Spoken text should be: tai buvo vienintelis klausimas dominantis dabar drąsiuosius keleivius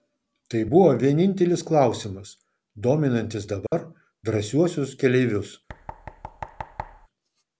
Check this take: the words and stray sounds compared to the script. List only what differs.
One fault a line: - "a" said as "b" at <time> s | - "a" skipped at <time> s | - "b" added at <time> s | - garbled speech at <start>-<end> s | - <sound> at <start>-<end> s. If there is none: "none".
- dropout at 3.7-3.7 s
- thud at 5.7-7.1 s